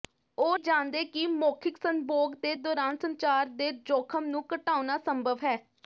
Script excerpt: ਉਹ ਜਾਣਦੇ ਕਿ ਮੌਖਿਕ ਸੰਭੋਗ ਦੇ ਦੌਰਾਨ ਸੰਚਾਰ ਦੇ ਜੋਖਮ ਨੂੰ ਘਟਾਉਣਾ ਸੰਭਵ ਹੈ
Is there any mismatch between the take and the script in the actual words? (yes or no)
no